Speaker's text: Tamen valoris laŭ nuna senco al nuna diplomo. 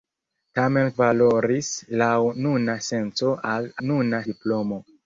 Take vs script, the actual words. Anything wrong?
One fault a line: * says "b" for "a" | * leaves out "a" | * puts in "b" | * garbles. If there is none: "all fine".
all fine